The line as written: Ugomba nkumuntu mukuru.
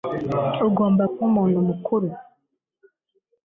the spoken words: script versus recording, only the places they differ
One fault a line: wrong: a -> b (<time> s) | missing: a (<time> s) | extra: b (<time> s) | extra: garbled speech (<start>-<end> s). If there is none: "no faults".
no faults